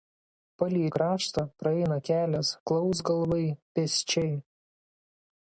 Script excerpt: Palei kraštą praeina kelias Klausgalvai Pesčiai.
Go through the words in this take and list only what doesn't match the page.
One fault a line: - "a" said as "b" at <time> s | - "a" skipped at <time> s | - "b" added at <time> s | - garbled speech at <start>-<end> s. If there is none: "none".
none